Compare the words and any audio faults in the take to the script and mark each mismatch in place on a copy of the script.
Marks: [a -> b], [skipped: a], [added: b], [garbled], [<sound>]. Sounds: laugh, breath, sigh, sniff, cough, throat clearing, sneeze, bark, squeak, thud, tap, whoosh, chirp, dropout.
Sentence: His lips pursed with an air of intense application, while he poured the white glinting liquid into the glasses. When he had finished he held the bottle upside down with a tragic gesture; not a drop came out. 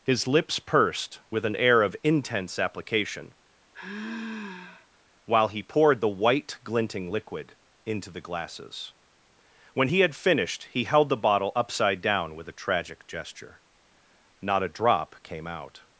His lips pursed with an air of intense application, [sigh] while he poured the white glinting liquid into the glasses. When he had finished he held the bottle upside down with a tragic gesture; not a drop came out.